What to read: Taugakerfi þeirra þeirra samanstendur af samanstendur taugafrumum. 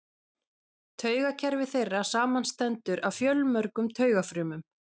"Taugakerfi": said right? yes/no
yes